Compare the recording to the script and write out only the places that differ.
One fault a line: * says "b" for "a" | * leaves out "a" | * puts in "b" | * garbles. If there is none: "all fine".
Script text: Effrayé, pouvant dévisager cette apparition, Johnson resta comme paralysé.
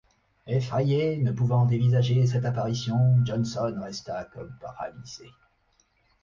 * puts in "ne"